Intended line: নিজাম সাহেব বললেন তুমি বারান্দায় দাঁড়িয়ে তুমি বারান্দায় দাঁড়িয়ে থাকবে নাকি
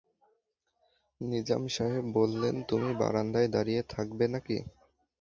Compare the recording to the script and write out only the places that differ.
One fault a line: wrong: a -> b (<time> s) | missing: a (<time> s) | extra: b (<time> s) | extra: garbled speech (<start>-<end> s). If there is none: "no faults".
missing: তুমি বারান্দায় দাঁড়িয়ে (3.8 s)